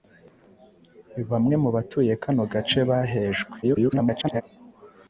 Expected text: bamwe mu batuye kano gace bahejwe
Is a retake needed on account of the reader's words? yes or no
yes